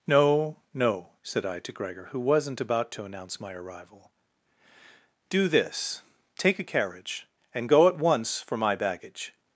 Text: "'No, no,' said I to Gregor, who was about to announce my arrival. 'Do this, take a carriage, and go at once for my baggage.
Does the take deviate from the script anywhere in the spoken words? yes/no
yes